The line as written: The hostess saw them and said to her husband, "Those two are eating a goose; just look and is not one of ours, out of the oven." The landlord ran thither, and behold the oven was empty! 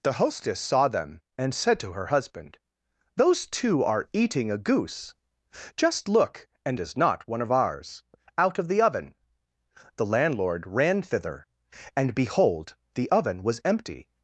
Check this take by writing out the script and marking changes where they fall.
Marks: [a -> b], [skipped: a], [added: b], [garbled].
The hostess saw them and said to her husband, "Those two are eating a goose; just look and is not one of ours, out of the oven." The landlord ran thither, and behold the oven was empty!